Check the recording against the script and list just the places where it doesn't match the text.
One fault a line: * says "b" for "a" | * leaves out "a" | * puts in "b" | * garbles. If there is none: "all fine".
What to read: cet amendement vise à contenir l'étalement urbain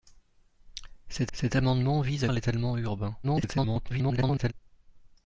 * puts in "cet"
* leaves out "contenir"
* garbles